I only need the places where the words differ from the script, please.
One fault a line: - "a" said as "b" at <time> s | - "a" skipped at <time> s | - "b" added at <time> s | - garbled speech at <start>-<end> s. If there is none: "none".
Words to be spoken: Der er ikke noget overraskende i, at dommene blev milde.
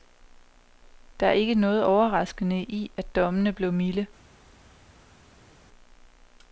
none